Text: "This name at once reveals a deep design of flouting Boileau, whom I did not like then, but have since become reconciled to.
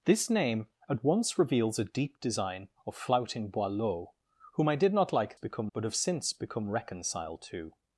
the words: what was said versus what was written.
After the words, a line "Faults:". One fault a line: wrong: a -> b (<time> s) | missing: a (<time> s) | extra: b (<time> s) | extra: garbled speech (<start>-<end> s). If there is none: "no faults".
"This name at once reveals a deep design of flouting Boileau, whom I did not like become, but have since become reconciled to.
Faults:
wrong: then -> become (5.3 s)